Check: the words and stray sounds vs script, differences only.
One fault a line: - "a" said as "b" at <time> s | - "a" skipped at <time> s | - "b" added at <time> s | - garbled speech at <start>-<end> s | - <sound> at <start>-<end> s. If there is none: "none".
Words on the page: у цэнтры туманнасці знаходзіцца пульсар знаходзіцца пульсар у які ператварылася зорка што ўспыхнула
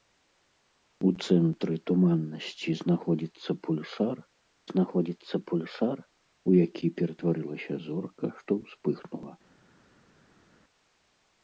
none